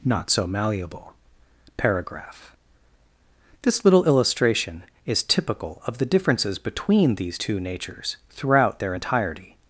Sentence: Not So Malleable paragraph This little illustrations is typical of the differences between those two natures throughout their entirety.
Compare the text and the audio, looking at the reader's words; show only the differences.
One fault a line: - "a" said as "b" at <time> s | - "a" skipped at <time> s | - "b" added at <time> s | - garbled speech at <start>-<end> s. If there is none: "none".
- "illustrations" said as "illustration" at 4.0 s
- "those" said as "these" at 7.2 s